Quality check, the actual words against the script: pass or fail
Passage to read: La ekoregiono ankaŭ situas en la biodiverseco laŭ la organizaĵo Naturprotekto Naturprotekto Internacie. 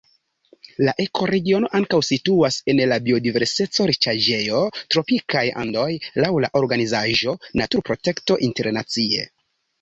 fail